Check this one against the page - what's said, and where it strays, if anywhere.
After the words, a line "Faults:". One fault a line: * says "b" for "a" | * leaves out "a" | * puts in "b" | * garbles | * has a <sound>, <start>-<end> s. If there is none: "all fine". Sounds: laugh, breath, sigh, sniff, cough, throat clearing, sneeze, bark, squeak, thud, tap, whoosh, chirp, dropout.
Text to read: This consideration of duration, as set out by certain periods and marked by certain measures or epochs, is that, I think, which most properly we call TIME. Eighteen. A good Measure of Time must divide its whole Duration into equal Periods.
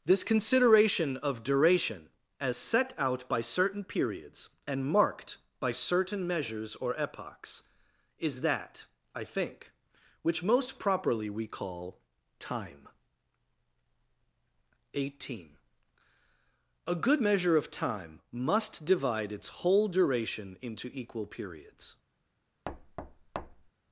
This consideration of duration, as set out by certain periods and marked by certain measures or epochs, is that, I think, which most properly we call TIME. Eighteen. A good Measure of Time must divide its whole Duration into equal Periods.
Faults:
* has a thud, 22.7-23.7 s